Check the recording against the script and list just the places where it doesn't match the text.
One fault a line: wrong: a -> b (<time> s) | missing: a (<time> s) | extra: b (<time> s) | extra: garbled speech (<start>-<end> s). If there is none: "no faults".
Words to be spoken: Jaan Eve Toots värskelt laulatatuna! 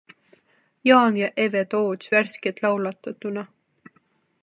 extra: ja (1.2 s)